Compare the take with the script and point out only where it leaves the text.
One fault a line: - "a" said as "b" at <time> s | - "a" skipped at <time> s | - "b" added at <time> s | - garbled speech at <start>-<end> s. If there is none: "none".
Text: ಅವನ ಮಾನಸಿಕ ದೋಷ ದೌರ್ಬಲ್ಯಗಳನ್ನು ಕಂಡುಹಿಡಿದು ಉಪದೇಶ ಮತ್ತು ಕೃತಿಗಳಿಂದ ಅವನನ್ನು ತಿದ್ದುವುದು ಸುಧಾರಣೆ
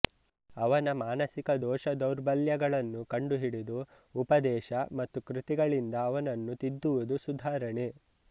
none